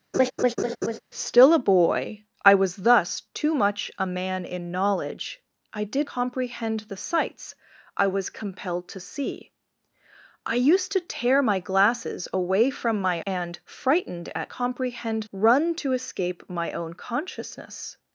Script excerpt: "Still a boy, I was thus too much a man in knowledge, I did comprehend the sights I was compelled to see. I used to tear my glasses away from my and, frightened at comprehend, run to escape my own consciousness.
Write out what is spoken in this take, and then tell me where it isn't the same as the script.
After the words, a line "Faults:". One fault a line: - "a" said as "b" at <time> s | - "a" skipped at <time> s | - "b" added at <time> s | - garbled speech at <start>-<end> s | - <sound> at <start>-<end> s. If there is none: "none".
"Still a boy, I was thus too much a man in knowledge, I did comprehend the sights I was compelled to see. I used to tear my glasses away from my and, frightened at comprehend, run to escape my own consciousness.
Faults:
- laugh at 0.1-1.0 s